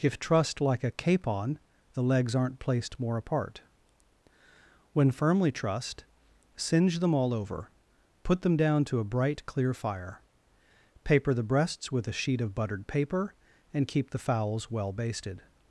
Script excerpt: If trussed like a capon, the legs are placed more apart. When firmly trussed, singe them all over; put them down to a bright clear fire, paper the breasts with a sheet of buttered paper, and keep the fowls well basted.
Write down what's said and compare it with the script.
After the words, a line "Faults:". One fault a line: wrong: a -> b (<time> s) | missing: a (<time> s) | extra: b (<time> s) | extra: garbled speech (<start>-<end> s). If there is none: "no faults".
If trussed like a capon, the legs aren't placed more apart. When firmly trussed, singe them all over; put them down to a bright clear fire, paper the breasts with a sheet of buttered paper, and keep the fowls well basted.
Faults:
wrong: are -> aren't (2.4 s)